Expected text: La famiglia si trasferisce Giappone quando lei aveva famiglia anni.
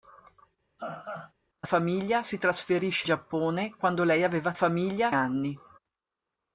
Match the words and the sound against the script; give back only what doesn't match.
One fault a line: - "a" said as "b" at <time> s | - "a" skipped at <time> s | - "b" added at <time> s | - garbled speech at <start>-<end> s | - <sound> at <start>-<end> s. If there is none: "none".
- laugh at 0.8-1.3 s